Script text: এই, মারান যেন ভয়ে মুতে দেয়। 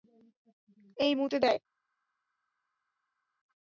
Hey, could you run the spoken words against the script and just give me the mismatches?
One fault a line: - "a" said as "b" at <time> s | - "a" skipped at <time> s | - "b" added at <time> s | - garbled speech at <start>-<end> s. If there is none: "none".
- "মারান যেন ভয়ে" skipped at 1.1 s